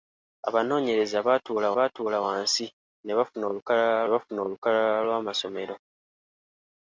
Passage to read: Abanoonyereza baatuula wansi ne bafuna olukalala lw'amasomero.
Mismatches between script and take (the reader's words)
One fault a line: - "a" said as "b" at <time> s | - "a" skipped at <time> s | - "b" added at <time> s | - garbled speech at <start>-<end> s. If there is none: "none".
- "baatuula" added at 1.8 s
- "bafuna olukalala" added at 4.1 s